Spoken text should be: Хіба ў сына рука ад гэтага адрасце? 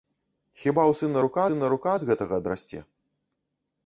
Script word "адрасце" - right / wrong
right